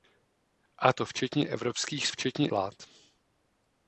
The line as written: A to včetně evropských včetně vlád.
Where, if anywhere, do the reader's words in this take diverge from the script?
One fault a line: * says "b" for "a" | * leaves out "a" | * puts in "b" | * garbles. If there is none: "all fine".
all fine